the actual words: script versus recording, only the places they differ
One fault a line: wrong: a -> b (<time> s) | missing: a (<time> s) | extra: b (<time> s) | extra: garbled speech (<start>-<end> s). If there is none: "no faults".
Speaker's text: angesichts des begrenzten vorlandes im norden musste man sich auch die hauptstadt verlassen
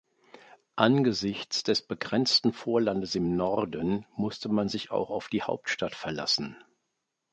extra: auf (5.1 s)